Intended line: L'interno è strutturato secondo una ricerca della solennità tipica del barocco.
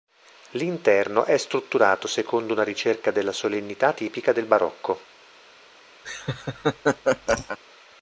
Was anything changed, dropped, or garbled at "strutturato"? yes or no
no